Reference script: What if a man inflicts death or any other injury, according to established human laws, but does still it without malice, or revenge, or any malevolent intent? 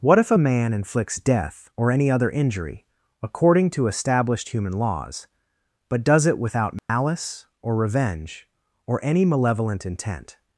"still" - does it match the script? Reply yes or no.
no